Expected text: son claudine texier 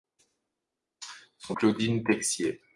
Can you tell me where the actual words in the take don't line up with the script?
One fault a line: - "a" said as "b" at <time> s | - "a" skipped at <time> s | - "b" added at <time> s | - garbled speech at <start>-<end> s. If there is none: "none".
none